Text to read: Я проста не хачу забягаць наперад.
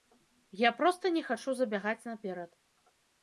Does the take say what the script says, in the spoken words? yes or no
yes